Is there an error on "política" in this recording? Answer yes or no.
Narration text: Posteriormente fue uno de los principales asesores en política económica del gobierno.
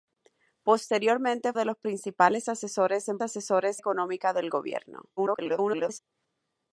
yes